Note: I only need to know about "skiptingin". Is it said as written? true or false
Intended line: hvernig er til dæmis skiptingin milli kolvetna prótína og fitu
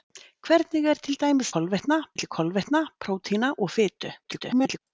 false